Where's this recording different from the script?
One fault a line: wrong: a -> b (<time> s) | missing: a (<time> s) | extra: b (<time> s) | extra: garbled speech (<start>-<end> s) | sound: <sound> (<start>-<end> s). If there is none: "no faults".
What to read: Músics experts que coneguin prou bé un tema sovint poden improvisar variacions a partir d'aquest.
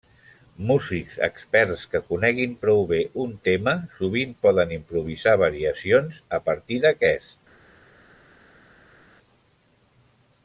no faults